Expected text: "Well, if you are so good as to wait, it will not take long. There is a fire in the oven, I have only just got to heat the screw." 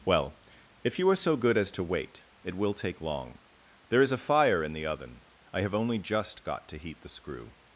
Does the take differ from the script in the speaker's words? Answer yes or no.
yes